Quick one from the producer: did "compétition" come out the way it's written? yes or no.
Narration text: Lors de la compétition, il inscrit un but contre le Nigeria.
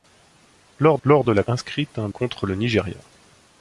no